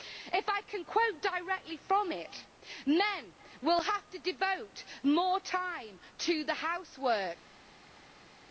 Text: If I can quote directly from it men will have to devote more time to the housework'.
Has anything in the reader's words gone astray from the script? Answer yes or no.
no